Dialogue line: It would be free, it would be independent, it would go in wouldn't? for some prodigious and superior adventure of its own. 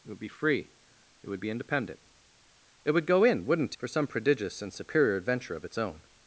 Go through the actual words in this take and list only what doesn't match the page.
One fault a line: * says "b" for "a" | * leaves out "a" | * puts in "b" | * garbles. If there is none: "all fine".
all fine